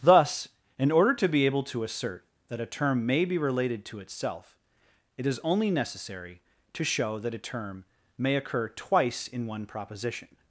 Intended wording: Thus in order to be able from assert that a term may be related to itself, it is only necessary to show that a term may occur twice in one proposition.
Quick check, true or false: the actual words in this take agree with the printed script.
false